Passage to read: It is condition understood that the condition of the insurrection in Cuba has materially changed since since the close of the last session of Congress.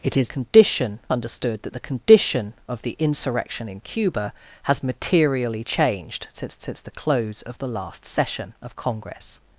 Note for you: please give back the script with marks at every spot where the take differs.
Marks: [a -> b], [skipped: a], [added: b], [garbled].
It is condition understood that the condition of the insurrection in Cuba has materially changed since since the close of the last session of Congress.